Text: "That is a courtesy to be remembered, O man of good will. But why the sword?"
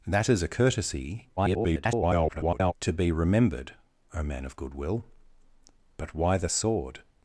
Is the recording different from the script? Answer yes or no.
yes